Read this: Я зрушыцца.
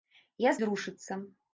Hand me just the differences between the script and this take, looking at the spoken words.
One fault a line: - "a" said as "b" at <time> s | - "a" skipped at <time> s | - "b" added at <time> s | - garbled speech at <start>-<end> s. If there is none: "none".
none